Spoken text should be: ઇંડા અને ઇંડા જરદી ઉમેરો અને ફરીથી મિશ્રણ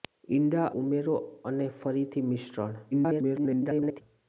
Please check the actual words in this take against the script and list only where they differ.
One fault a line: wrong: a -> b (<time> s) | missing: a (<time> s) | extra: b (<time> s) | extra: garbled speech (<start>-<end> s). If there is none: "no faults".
missing: અને ઇંડા જરદી (0.7 s)
extra: garbled speech (2.9-4.0 s)